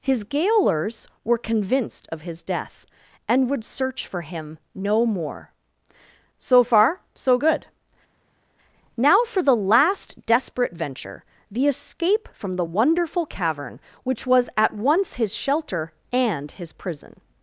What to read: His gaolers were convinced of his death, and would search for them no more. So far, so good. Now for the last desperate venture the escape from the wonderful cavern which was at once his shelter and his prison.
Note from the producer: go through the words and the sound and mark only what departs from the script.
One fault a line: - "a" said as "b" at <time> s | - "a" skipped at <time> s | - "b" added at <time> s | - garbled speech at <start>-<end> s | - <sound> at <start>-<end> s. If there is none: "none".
- "them" said as "him" at 4.2 s